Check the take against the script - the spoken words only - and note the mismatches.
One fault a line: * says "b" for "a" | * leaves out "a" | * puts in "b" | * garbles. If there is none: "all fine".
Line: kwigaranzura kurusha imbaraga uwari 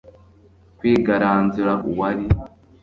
* leaves out "kurusha imbaraga"